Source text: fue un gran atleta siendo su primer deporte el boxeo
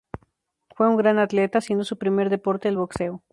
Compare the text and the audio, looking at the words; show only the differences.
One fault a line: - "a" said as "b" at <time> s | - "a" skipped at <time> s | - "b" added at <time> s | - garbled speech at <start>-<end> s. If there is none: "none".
none